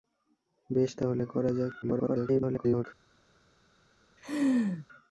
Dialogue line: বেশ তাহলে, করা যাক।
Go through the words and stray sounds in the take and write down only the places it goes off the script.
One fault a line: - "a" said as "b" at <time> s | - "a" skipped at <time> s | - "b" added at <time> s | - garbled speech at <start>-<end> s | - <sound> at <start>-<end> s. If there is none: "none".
- garbled speech at 1.8-2.8 s
- laugh at 4.2-4.9 s